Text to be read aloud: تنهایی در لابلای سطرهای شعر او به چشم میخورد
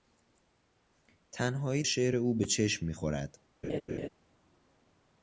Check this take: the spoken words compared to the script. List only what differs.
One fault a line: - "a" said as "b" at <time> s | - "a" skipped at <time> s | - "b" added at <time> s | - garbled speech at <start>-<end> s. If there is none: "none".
- "در لابلای سطرهای" skipped at 1.8 s